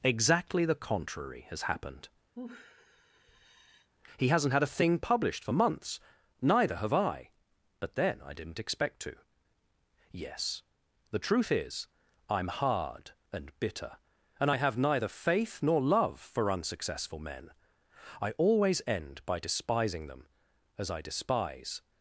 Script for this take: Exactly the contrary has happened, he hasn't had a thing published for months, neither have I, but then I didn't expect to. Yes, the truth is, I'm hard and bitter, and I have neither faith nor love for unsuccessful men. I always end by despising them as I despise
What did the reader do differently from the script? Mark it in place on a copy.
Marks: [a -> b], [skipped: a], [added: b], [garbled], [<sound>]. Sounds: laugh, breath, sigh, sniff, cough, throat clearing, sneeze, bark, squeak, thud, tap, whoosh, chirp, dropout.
Exactly the contrary has happened, [sigh] he hasn't had a thing published for months, neither have I, but then I didn't expect to. Yes, the truth is, I'm hard and bitter, and I have neither faith nor love for unsuccessful men. I always end by despising them as I despise